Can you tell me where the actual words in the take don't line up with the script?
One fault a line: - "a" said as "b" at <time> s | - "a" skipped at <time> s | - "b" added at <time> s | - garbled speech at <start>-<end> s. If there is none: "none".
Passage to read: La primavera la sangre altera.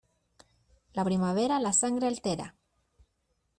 none